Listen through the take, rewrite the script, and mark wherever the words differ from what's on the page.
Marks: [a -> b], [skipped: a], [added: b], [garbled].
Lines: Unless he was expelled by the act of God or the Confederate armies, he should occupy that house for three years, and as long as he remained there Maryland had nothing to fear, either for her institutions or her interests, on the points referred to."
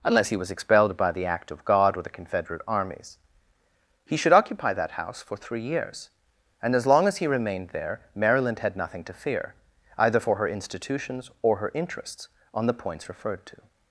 Unless he was expelled by the act of God or the Confederate armies, he should occupy that house for three years, and as long as he remained there Maryland had nothing to fear, either for her institutions or her interests, on the points referred to."